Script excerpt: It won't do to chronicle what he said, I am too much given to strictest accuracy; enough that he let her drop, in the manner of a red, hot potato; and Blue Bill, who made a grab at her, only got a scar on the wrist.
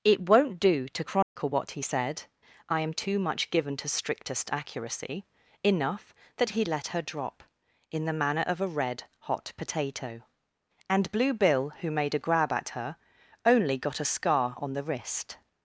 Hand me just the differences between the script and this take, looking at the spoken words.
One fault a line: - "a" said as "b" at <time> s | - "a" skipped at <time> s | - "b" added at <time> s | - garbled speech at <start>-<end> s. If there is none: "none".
none